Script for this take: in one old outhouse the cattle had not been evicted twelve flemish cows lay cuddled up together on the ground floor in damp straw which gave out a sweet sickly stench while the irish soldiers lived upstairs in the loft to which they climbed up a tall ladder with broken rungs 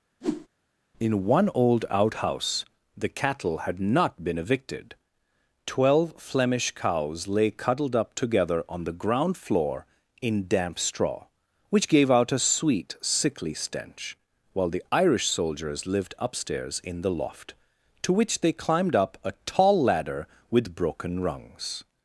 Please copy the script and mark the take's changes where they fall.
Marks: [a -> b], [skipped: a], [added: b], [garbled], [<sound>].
[whoosh] in one old outhouse the cattle had not been evicted twelve flemish cows lay cuddled up together on the ground floor in damp straw which gave out a sweet sickly stench while the irish soldiers lived upstairs in the loft to which they climbed up a tall ladder with broken rungs